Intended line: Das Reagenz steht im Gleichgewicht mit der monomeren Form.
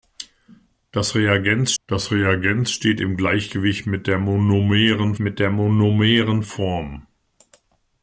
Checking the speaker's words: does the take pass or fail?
fail